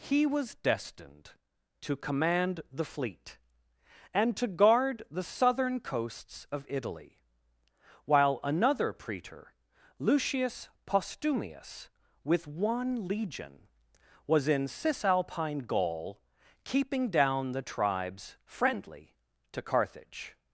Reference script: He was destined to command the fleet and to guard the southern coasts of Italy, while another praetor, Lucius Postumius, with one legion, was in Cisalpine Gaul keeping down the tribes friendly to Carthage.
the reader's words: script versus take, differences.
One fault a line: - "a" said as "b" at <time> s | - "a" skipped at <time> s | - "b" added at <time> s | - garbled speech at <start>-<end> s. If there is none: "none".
none